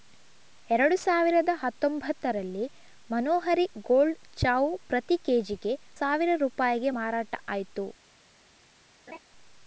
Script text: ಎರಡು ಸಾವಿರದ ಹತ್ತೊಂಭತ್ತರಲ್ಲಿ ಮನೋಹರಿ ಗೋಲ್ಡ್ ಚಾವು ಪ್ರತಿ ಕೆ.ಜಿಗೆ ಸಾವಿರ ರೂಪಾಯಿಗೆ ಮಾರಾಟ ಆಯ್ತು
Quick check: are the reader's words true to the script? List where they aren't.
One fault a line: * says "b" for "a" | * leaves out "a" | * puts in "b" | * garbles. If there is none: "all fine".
all fine